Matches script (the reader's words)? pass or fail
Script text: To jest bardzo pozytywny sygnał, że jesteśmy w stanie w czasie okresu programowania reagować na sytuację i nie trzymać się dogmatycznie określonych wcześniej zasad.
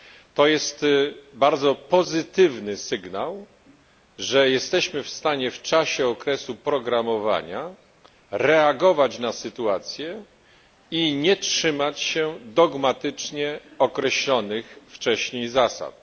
pass